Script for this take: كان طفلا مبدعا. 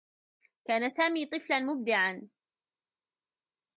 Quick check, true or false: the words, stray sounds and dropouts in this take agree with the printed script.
false